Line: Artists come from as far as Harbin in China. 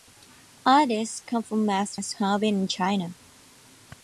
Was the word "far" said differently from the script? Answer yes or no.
yes